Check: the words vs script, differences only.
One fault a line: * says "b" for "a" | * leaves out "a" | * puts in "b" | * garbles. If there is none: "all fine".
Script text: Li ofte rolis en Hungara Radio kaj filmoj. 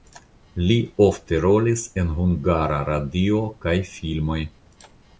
all fine